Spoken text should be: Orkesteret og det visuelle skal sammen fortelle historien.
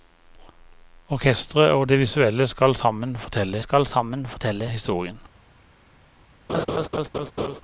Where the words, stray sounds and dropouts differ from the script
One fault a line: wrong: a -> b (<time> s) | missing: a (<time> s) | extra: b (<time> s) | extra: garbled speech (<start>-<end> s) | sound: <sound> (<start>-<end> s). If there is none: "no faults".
extra: skal sammen fortelle (3.6 s)
sound: laugh (6.5-7.6 s)